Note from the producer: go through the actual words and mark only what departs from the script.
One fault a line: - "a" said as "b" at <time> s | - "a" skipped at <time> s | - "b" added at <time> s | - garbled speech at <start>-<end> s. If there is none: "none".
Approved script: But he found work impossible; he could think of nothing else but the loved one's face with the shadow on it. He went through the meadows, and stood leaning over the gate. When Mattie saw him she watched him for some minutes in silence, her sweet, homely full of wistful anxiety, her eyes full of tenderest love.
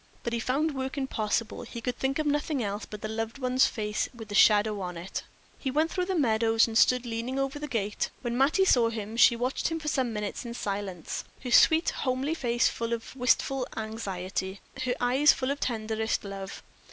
- "face" added at 12.3 s